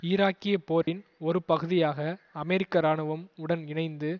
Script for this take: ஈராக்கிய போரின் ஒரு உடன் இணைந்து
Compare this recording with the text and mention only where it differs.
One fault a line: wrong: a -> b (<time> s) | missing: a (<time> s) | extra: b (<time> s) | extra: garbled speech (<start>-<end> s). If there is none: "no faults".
extra: பகுதியாக அமெரிக்க இராணுவம் (1.4 s)